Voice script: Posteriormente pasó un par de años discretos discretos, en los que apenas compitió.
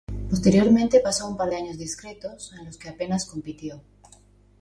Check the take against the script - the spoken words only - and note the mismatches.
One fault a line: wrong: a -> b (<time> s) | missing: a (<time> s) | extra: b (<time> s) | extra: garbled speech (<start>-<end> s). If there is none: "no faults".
missing: discretos (2.5 s)